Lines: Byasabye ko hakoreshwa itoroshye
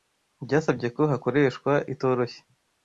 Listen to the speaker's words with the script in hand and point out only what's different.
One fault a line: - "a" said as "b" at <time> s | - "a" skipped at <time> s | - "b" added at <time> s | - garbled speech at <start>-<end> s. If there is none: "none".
none